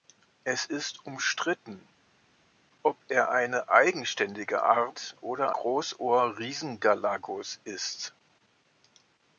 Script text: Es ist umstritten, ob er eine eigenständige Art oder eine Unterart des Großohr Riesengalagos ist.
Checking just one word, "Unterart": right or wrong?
wrong